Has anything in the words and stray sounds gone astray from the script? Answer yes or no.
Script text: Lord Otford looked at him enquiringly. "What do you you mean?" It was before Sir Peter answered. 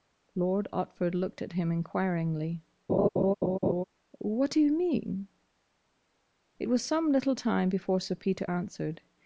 yes